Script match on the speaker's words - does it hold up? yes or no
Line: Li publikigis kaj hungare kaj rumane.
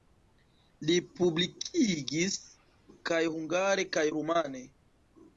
yes